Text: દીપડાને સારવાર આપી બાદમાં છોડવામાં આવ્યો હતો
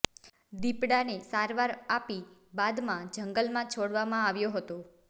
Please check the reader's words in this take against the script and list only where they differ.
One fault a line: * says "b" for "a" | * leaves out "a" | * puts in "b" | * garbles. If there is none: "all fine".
* puts in "જંગલમાં"